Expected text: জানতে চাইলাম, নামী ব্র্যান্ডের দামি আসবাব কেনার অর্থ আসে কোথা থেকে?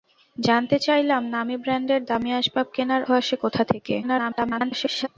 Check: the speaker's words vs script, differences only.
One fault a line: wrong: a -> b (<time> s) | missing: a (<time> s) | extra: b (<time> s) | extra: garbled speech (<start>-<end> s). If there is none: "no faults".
missing: অর্থ (3.0 s)
extra: garbled speech (4.0-5.1 s)